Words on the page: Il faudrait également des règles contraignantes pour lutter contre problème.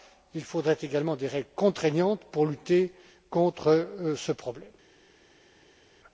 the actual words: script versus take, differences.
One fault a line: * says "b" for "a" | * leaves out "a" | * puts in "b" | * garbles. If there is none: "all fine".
* puts in "ce"